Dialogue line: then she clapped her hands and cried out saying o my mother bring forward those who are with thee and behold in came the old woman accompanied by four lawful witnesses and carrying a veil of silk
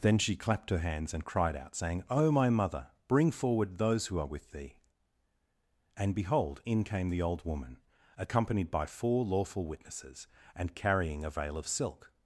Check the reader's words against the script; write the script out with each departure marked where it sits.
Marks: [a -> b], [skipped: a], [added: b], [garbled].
then she clapped her hands and cried out saying o my mother bring forward those who are with thee and behold in came the old woman accompanied by four lawful witnesses and carrying a veil of silk